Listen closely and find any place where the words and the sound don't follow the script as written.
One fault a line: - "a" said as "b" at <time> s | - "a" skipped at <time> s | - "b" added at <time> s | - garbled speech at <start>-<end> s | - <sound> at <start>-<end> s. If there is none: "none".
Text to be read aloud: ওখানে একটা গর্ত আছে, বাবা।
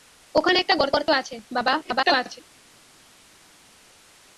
- "গর্ত" added at 0.9 s
- garbled speech at 1.8-2.4 s